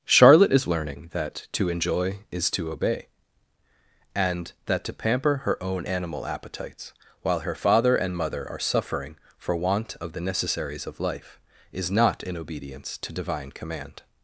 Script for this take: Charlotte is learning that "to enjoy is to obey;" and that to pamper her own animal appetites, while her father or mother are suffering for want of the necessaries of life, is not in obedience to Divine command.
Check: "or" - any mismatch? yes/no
yes